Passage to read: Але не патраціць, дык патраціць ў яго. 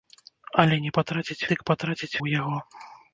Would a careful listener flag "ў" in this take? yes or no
no